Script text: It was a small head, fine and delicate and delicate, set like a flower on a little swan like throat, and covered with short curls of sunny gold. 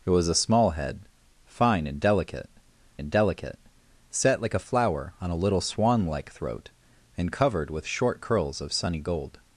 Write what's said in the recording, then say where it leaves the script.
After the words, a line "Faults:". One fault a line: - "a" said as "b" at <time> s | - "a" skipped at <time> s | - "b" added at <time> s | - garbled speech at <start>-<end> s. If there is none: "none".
It was a small head, fine and delicate and delicate, set like a flower on a little swan like throat, and covered with short curls of sunny gold.
Faults:
none